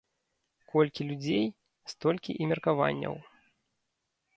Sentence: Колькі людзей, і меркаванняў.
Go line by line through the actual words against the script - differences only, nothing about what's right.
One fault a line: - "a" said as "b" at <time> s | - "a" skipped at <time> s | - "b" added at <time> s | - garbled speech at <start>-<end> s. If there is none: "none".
- "столькі" added at 1.9 s